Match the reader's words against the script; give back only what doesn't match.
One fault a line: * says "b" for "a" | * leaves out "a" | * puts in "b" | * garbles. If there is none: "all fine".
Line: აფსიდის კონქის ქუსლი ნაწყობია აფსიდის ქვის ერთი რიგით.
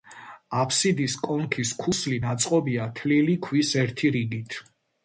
* says "თლილი" for "აფსიდის"